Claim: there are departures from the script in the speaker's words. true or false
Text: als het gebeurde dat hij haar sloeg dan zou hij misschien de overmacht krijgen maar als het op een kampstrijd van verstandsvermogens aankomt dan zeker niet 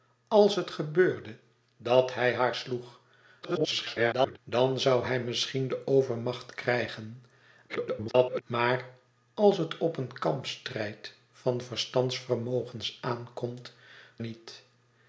true